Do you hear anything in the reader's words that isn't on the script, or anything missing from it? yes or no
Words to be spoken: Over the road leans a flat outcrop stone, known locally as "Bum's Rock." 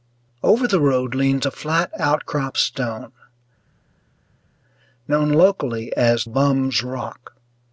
no